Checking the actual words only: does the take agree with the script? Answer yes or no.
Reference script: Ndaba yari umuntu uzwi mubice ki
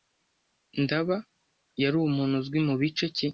yes